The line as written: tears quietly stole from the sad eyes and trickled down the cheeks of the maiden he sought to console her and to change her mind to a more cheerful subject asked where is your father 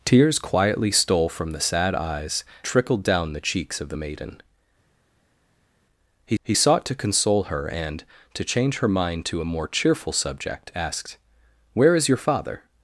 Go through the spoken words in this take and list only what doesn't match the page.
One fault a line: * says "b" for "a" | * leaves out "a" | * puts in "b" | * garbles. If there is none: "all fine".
* leaves out "and"
* puts in "he"